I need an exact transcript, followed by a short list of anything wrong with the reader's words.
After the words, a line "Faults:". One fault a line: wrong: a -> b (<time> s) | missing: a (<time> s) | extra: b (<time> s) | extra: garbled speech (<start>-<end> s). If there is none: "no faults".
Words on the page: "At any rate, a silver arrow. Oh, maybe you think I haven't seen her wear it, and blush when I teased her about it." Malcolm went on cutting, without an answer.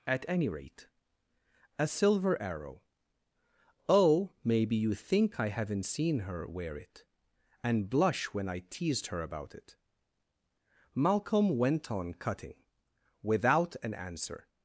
"At any rate, a silver arrow. Oh, maybe you think I haven't seen her wear it, and blush when I teased her about it." Malcolm went on cutting, without an answer.
Faults:
no faults